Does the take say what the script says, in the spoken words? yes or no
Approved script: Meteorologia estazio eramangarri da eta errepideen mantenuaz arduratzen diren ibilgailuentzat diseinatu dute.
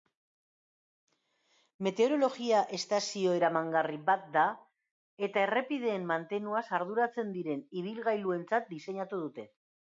no